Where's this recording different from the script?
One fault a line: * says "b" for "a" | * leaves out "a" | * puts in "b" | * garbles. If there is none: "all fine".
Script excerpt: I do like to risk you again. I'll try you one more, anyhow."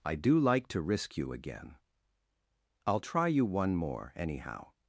all fine